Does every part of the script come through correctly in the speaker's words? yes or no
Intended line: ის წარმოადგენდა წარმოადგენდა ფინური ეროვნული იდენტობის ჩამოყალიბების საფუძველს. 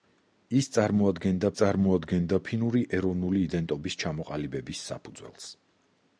yes